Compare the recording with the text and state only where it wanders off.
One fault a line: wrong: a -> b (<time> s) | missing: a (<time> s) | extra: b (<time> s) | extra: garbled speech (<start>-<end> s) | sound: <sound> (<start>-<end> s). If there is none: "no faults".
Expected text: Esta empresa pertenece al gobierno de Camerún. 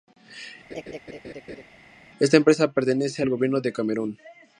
sound: laugh (0.7-1.6 s)